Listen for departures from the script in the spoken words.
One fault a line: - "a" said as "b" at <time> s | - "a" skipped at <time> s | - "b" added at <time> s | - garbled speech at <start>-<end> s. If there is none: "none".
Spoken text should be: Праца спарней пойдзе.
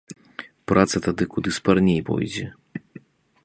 - "тады куды" added at 1.1 s